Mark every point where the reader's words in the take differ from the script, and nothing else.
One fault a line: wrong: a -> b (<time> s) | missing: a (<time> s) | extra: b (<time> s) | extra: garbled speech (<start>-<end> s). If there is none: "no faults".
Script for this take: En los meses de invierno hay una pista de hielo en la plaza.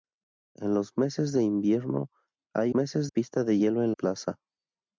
wrong: una -> meses (2.7 s)
missing: la (3.9 s)